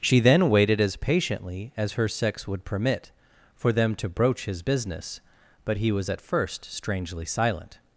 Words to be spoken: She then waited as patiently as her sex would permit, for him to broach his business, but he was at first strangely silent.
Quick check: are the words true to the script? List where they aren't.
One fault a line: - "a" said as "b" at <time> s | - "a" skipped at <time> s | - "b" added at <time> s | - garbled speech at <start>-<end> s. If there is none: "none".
- "him" said as "them" at 3.7 s